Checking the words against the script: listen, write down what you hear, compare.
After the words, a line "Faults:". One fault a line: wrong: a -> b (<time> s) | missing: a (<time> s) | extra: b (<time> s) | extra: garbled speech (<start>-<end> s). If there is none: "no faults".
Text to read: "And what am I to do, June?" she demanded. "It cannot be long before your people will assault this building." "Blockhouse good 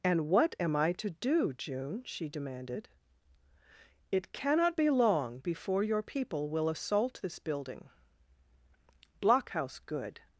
"And what am I to do, June?" she demanded. "It cannot be long before your people will assault this building." "Blockhouse good
Faults:
no faults